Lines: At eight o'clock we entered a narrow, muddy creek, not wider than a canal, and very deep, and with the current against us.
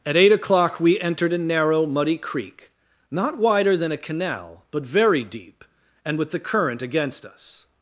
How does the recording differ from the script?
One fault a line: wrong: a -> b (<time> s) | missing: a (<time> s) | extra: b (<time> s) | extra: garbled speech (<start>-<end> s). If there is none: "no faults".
wrong: and -> but (4.7 s)